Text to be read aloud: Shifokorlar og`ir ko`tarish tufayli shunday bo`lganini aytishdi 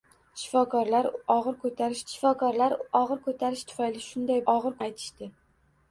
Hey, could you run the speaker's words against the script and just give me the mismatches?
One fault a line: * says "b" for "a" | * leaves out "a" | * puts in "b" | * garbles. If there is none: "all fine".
* puts in "shifokorlar og`ir ko`tarish"
* says "og`ir" for "bo`lganini"